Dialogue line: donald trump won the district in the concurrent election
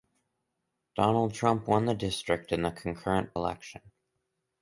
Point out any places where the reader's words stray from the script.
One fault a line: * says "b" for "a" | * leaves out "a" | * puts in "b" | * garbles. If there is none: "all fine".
all fine